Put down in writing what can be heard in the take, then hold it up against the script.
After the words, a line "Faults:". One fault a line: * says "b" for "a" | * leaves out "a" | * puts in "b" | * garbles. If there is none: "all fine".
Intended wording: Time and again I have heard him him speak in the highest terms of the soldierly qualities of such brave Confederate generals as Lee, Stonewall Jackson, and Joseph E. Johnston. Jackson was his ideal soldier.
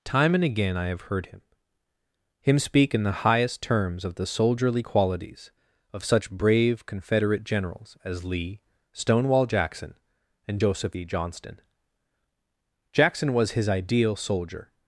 Time and again I have heard him him speak in the highest terms of the soldierly qualities of such brave Confederate generals as Lee, Stonewall Jackson, and Joseph E. Johnston. Jackson was his ideal soldier.
Faults:
all fine